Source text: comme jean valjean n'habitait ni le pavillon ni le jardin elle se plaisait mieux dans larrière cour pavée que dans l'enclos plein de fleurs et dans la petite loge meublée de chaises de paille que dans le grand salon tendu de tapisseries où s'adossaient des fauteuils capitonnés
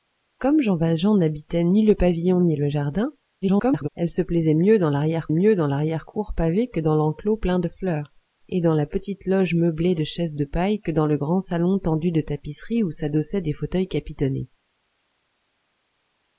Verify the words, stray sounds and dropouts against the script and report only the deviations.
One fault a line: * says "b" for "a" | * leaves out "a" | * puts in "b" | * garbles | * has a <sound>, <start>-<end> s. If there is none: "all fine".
* garbles
* puts in "mieux dans larrière"